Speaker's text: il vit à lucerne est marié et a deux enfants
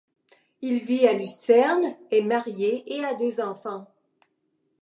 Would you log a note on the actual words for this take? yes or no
no